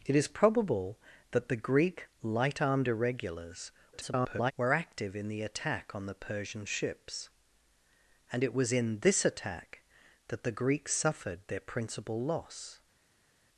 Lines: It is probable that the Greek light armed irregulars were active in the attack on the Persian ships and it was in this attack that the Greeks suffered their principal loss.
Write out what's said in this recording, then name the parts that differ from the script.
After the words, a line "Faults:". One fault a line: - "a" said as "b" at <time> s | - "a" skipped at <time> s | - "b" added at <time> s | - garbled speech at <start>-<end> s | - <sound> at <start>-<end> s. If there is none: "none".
It is probable that the Greek light armed irregulars [garbled] were active in the attack on the Persian ships and it was in this attack that the Greeks suffered their principal loss.
Faults:
- garbled speech at 3.9-4.5 s